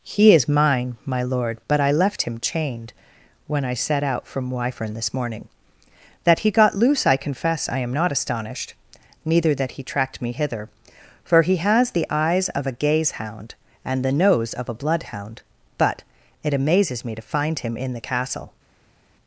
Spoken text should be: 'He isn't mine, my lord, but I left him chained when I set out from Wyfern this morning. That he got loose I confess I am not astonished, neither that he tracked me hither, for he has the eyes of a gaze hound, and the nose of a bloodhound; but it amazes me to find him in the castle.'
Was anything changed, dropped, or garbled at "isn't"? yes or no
yes